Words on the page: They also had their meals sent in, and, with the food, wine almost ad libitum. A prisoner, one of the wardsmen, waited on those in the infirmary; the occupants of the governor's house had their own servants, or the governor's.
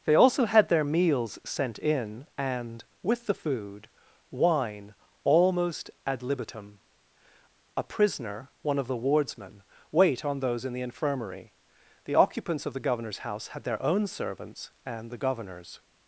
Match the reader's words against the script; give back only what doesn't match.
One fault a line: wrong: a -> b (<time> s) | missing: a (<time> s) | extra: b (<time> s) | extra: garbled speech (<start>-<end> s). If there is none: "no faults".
wrong: waited -> wait (9.9 s)
wrong: or -> and (14.8 s)